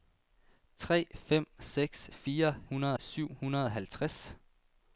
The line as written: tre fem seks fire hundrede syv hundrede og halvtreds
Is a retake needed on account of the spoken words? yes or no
no